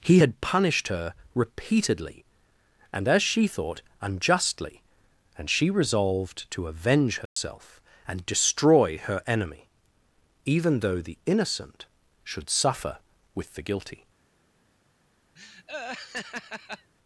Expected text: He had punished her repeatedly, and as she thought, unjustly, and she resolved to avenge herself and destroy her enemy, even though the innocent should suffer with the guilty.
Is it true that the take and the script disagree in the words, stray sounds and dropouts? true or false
true